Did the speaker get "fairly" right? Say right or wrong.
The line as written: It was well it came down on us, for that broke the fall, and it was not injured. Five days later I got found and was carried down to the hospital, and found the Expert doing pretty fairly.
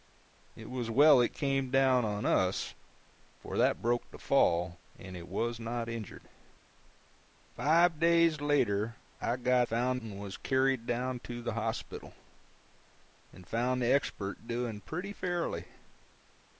right